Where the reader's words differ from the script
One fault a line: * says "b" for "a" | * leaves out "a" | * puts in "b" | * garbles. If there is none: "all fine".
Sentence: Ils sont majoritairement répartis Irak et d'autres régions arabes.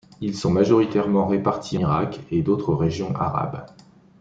all fine